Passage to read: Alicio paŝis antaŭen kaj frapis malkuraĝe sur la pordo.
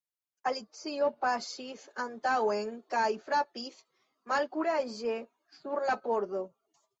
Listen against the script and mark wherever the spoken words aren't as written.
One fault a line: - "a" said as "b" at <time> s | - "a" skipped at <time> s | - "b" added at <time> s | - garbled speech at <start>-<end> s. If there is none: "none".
none